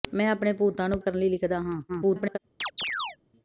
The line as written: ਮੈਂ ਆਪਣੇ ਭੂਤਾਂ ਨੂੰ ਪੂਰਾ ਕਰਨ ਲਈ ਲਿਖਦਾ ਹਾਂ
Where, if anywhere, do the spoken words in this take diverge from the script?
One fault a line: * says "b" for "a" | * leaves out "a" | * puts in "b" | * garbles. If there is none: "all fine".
* leaves out "ਪੂਰਾ"
* garbles